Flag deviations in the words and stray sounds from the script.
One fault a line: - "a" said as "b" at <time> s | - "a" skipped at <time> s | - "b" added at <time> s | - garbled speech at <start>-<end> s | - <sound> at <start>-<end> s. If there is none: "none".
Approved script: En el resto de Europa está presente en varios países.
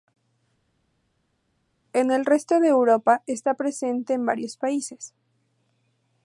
none